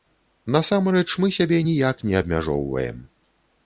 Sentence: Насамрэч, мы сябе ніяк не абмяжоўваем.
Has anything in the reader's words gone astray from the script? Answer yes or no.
no